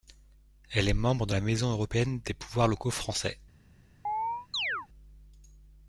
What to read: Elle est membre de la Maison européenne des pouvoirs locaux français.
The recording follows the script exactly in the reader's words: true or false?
true